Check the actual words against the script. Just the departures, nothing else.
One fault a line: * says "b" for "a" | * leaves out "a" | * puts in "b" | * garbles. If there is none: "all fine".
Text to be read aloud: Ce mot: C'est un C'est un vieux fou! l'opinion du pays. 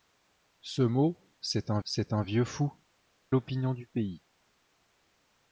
all fine